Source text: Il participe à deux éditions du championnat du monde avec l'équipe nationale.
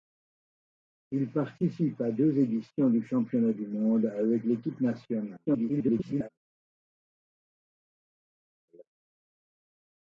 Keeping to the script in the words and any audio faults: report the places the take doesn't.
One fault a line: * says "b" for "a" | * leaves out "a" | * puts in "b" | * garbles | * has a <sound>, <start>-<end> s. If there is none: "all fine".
* garbles